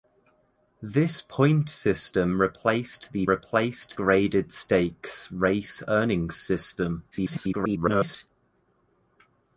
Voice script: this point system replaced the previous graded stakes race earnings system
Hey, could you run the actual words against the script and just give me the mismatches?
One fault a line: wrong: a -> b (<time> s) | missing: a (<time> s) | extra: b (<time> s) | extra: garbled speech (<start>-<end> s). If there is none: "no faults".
wrong: previous -> replaced (3.3 s)
extra: garbled speech (7.1-8.3 s)